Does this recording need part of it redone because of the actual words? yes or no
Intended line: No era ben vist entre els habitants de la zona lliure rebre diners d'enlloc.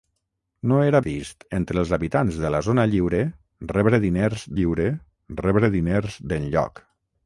yes